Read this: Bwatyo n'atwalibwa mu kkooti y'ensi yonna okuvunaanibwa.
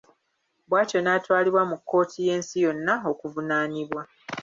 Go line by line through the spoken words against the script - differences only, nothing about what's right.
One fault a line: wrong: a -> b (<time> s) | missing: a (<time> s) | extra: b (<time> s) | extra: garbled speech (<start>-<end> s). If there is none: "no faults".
no faults